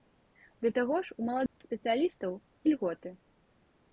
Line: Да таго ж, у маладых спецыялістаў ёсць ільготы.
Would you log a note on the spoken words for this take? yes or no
yes